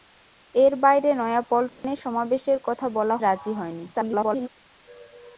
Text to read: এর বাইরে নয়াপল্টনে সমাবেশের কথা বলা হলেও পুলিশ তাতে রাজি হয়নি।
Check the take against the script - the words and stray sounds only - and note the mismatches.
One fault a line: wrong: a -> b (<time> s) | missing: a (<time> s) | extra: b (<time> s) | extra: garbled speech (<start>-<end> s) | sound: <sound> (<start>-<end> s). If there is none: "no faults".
sound: dropout (1.7-1.8 s)
missing: হলেও পুলিশ তাতে (3.2 s)
extra: garbled speech (3.9-4.5 s)